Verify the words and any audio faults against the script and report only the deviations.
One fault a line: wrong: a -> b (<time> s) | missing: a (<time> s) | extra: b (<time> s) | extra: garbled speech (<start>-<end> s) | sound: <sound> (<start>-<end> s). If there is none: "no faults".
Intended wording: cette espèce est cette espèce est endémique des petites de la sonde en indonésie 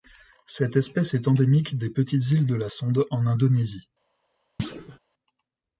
missing: cette espèce est (1.3 s)
extra: îles (2.3 s)
sound: thud (4.6-5.0 s)